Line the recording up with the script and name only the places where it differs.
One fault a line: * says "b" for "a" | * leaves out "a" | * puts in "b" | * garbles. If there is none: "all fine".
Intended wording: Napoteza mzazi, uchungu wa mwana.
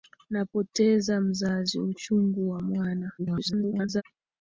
* garbles